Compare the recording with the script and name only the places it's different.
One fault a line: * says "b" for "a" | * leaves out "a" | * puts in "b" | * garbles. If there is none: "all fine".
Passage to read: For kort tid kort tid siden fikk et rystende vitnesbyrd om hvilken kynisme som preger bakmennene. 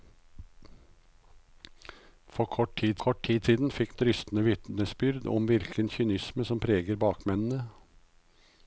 all fine